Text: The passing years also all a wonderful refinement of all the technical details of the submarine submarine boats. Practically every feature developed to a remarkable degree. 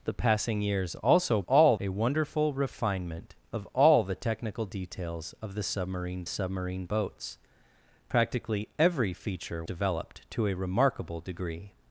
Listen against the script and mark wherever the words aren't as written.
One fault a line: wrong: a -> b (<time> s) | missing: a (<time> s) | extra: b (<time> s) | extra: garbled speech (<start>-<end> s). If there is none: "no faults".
no faults